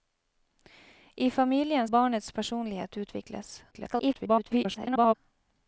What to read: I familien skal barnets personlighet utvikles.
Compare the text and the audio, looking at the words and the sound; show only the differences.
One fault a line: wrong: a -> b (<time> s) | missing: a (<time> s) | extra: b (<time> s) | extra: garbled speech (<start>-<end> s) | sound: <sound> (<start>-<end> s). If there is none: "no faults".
missing: skal (1.9 s)
extra: garbled speech (3.7-5.1 s)